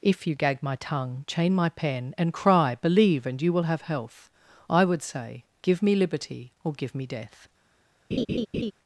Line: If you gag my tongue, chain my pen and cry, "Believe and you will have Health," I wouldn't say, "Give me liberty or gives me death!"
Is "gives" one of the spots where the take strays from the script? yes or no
yes